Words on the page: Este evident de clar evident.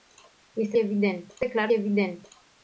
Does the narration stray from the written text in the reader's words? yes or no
no